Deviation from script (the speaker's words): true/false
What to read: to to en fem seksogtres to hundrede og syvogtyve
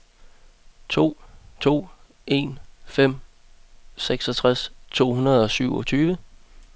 false